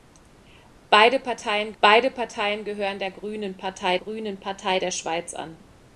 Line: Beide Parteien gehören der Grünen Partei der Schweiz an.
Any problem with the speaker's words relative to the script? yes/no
yes